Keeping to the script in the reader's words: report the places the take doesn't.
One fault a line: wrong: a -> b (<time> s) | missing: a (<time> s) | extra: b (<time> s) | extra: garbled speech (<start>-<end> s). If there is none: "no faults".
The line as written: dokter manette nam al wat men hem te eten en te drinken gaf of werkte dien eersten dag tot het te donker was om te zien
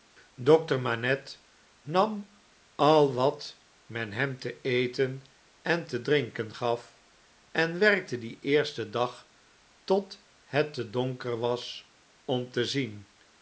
wrong: of -> en (7.5 s)